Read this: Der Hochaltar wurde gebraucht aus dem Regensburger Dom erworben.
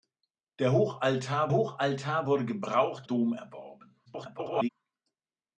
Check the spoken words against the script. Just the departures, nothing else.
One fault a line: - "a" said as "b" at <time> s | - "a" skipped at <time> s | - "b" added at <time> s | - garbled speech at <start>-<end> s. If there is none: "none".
- "Hochaltar" added at 1.5 s
- "aus dem Regensburger" skipped at 3.1 s
- garbled speech at 4.1-4.7 s